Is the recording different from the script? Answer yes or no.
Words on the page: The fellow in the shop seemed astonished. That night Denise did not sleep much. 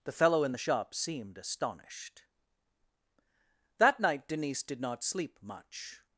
no